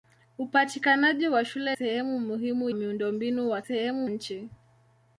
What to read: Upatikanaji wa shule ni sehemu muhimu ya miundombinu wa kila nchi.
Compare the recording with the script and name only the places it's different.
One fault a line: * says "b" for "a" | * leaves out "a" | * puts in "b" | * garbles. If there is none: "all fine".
* leaves out "ni"
* leaves out "ya"
* says "sehemu" for "kila"